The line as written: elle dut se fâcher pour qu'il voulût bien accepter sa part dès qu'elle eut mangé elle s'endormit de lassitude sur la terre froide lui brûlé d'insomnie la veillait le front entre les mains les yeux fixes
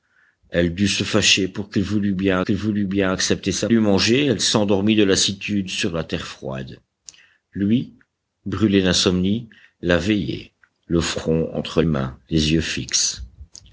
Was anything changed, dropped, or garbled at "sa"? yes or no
yes